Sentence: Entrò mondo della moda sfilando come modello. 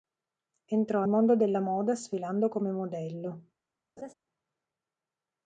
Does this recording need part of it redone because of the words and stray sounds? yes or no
yes